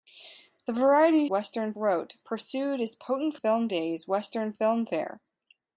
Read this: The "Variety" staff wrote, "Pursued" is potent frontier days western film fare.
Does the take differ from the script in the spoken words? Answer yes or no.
yes